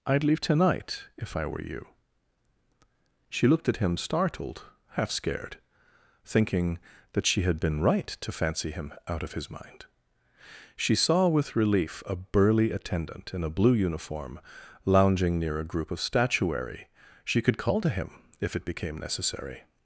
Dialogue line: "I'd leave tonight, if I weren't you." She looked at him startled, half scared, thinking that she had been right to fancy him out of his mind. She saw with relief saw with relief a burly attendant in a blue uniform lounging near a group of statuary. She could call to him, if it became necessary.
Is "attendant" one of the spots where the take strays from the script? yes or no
no